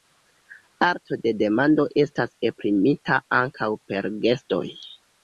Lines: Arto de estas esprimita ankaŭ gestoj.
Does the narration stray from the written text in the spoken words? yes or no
yes